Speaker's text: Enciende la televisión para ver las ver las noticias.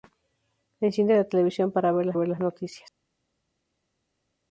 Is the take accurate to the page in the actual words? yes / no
yes